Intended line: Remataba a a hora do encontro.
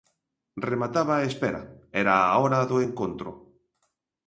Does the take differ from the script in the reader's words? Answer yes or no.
yes